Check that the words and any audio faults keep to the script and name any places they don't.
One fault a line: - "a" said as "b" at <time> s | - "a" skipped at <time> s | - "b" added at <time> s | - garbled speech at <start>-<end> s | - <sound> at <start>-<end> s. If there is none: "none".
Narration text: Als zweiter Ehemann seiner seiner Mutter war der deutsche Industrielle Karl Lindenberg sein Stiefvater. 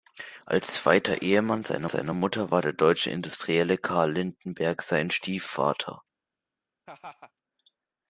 - laugh at 6.9-7.3 s